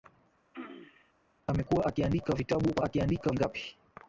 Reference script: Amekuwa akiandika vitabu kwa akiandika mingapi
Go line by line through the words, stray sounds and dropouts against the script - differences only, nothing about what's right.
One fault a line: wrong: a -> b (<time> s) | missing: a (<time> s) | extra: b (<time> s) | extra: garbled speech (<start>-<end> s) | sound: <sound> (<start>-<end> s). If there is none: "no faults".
sound: throat clearing (0.5-1.1 s)